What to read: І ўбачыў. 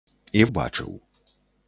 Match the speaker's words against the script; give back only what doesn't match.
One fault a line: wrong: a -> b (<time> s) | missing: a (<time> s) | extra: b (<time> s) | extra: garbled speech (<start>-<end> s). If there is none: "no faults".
no faults